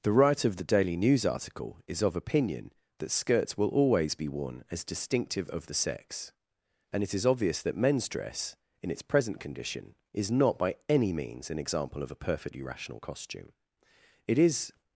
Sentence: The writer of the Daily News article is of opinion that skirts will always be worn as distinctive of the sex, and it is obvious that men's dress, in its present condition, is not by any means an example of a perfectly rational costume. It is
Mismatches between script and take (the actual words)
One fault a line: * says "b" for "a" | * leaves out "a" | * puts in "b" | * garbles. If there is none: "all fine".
all fine